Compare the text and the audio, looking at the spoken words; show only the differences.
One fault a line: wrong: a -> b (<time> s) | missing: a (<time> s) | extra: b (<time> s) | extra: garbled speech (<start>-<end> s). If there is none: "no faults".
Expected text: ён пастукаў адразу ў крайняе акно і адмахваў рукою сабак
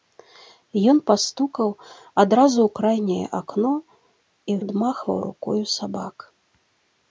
no faults